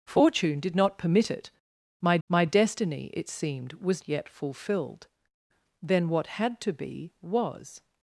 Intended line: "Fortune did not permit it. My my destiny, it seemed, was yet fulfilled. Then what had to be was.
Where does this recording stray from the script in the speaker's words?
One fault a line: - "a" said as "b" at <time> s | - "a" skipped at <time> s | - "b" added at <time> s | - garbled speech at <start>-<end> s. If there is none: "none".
none